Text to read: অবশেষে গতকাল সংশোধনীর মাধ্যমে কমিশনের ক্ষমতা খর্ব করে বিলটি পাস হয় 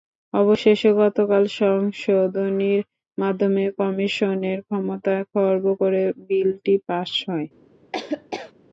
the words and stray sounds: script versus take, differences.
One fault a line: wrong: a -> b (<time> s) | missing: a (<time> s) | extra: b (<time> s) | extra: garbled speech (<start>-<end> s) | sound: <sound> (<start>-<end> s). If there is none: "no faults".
sound: laugh (7.9-8.5 s)